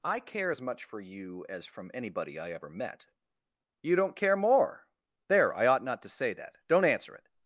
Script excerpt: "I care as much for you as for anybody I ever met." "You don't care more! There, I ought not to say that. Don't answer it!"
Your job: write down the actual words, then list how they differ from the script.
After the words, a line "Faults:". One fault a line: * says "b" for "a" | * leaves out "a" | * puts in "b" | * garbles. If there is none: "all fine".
"I care as much for you as from anybody I ever met." "You don't care more! There, I ought not to say that. Don't answer it!"
Faults:
* says "from" for "for"